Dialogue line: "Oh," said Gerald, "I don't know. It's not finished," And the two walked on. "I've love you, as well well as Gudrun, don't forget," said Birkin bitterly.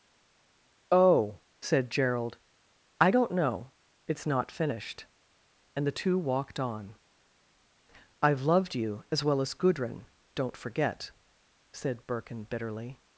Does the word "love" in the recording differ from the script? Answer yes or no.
yes